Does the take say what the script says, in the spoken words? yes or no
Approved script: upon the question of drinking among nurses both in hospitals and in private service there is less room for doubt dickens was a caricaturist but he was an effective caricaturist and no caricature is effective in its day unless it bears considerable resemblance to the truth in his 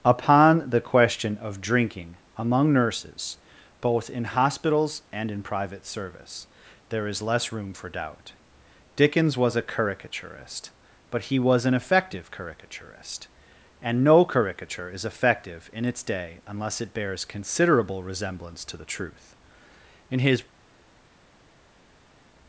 yes